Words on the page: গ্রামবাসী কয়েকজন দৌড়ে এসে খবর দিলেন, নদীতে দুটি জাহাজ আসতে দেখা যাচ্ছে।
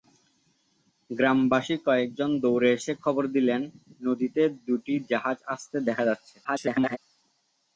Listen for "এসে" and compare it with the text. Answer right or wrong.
right